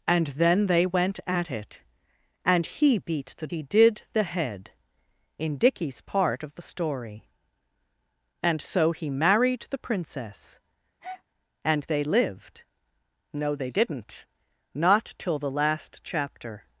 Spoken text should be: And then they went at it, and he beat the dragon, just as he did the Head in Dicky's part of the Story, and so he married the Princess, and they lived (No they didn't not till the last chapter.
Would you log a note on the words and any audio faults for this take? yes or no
yes